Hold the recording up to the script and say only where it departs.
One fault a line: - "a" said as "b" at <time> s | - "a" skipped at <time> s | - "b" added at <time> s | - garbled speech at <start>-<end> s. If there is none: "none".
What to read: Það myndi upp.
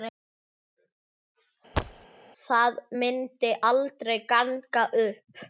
- "aldrei ganga" added at 3.7 s